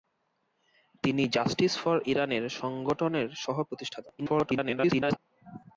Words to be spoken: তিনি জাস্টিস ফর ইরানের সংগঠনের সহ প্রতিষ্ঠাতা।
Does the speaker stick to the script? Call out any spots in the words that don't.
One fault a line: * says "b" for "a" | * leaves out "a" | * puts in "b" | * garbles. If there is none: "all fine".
* garbles